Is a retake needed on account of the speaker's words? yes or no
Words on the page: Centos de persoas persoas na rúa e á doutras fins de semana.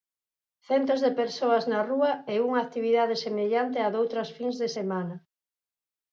yes